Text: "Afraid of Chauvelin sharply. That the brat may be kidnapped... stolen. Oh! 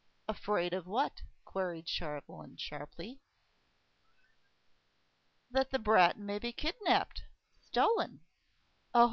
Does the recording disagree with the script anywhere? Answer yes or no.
yes